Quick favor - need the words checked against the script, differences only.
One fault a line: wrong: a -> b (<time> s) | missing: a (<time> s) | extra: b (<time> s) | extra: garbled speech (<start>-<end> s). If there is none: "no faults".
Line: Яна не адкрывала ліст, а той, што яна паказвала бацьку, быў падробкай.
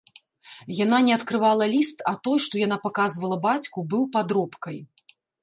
no faults